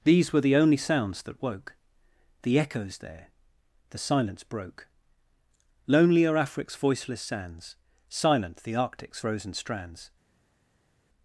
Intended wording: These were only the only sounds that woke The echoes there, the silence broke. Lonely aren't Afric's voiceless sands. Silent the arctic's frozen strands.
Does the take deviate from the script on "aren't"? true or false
true